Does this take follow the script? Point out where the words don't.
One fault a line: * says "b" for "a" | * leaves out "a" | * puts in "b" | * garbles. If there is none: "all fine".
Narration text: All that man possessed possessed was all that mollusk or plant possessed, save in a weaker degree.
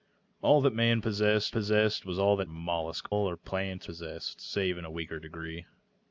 all fine